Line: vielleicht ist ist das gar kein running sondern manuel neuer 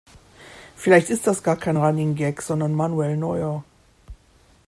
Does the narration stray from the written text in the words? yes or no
yes